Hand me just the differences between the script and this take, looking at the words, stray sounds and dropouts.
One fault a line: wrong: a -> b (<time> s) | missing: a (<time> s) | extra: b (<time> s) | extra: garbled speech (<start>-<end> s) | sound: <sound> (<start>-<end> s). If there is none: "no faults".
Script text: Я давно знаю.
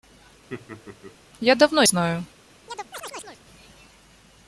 sound: laugh (0.5-1.2 s)
sound: chirp (2.7-3.4 s)